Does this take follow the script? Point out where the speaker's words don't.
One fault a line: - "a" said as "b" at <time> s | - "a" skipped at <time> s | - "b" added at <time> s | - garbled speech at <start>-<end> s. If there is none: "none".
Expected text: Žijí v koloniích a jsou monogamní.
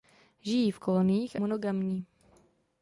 - "jsou" skipped at 1.4 s